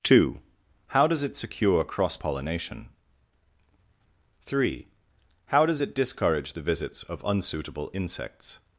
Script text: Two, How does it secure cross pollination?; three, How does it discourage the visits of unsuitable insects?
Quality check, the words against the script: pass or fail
pass